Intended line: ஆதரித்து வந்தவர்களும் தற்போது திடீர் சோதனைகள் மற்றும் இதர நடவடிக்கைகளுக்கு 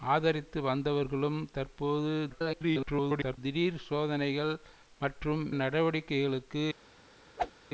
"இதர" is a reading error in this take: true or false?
true